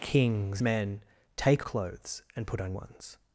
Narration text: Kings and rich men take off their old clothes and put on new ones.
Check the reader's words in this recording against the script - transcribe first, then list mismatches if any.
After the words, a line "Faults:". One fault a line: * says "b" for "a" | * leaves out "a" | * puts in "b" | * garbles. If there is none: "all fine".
Kings men take clothes and put on ones.
Faults:
* leaves out "and rich"
* leaves out "off their old"
* leaves out "new"